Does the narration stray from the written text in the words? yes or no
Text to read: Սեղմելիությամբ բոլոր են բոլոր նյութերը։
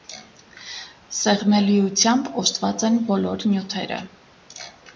yes